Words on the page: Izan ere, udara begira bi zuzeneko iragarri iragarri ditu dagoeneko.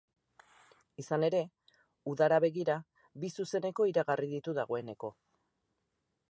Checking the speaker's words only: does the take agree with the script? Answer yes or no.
no